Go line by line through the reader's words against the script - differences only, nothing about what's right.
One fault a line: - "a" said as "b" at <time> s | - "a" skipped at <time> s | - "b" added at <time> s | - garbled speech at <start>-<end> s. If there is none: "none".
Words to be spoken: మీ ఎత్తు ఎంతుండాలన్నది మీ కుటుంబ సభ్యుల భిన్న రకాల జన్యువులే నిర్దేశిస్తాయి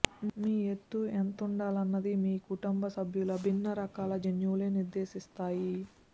none